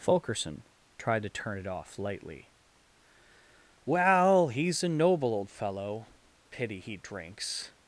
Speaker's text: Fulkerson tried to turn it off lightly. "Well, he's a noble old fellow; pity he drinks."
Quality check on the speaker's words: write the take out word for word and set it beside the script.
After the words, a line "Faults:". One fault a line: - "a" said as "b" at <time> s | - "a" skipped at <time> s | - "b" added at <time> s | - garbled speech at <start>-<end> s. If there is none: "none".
Fulkerson tried to turn it off lightly. "Well, he's a noble old fellow; pity he drinks."
Faults:
none